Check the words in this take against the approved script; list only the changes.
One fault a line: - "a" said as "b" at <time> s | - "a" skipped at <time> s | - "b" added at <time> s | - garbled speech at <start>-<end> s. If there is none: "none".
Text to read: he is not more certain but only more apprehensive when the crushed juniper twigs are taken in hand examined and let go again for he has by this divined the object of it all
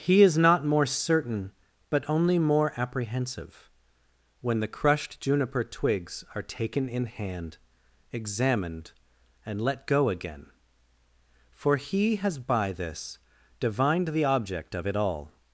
none